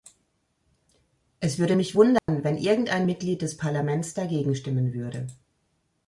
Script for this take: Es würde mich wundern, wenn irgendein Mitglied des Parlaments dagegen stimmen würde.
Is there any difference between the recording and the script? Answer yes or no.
no